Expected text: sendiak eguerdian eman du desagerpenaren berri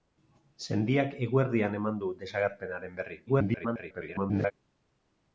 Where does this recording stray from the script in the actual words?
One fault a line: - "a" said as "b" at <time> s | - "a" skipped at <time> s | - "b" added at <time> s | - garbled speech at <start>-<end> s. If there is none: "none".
- garbled speech at 3.3-4.5 s